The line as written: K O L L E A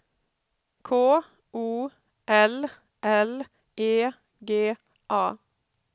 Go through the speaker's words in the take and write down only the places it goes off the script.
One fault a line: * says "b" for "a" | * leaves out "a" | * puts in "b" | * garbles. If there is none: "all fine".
* puts in "G"